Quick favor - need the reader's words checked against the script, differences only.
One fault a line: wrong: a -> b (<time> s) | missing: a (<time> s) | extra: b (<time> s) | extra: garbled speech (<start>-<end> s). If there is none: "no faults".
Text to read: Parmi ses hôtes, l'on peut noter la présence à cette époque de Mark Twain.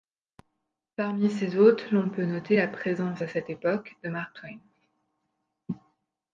no faults